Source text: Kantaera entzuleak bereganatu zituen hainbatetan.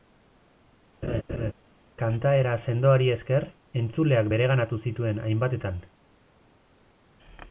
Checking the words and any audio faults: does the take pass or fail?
fail